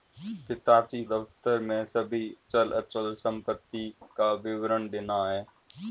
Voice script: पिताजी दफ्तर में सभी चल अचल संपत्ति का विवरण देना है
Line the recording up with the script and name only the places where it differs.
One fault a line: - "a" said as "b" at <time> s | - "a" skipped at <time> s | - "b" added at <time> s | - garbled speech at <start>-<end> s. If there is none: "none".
none